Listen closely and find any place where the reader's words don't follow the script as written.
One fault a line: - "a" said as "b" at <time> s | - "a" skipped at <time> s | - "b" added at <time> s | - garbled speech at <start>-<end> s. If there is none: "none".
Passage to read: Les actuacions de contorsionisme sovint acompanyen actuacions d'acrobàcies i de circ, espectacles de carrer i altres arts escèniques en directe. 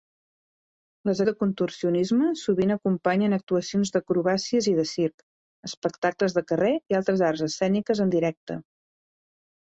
- "actuacions" skipped at 1.2 s